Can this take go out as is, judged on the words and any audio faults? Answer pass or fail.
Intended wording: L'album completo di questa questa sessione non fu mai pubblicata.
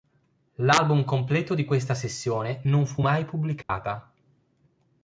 fail